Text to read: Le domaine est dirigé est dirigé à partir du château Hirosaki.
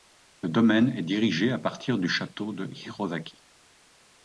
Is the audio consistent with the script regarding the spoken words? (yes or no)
no